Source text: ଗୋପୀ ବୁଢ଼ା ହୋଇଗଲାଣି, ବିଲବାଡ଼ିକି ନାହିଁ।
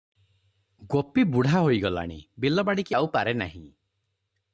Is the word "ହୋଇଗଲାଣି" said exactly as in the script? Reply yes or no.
yes